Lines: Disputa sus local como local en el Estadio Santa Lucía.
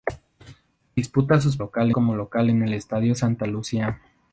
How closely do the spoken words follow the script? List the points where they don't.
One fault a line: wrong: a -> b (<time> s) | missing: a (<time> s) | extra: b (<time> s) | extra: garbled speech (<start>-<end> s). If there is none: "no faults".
no faults